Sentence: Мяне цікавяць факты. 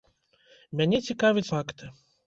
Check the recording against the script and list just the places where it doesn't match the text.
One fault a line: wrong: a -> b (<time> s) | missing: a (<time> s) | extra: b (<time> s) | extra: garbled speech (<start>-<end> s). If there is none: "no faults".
no faults